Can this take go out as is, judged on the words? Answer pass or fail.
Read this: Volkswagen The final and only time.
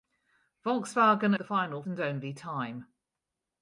pass